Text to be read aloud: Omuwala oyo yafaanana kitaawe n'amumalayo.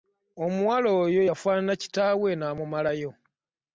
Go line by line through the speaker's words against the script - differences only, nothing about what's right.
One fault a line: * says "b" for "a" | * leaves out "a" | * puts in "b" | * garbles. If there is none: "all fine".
all fine